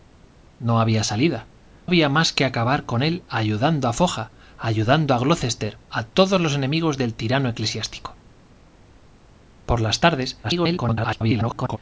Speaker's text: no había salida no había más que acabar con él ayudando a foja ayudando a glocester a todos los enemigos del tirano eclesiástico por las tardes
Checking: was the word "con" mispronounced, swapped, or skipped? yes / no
no